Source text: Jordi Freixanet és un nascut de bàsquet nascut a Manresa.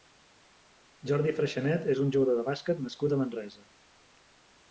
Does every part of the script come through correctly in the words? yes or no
no